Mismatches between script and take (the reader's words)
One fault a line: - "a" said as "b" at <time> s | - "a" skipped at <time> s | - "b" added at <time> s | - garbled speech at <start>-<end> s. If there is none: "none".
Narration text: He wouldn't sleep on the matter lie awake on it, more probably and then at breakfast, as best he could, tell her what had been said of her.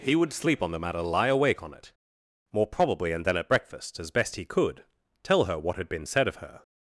- "wouldn't" said as "would" at 0.1 s